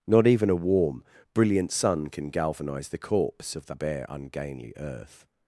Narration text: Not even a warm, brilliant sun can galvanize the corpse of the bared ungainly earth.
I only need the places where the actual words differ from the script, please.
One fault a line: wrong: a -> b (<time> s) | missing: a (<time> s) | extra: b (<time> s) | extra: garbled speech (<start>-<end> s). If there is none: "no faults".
wrong: bared -> bare (3.7 s)